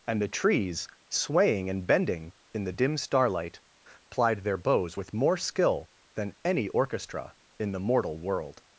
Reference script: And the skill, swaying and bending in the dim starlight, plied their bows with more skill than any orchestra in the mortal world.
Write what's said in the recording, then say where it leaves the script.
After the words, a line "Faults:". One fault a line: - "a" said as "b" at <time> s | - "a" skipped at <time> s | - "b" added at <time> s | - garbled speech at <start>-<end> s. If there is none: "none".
And the trees, swaying and bending in the dim starlight, plied their bows with more skill than any orchestra in the mortal world.
Faults:
- "skill" said as "trees" at 0.3 s